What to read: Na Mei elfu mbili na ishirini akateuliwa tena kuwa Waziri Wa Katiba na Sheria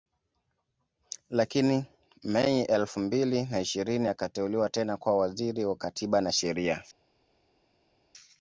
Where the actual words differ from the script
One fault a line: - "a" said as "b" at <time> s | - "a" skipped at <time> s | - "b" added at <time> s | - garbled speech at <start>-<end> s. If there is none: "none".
- "Na" said as "Lakini" at 1.3 s